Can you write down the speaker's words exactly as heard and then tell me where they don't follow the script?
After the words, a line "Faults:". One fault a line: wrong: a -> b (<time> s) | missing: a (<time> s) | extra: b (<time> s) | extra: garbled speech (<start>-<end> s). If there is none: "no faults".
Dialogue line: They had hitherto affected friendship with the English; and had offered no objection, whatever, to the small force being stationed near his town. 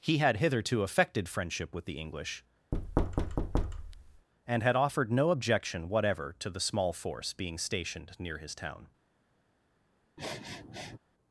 He had hitherto affected friendship with the English; and had offered no objection, whatever, to the small force being stationed near his town.
Faults:
wrong: They -> He (0.0 s)